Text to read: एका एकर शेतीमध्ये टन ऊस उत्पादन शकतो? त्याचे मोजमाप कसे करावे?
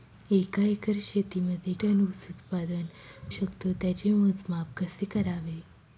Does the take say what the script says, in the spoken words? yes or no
yes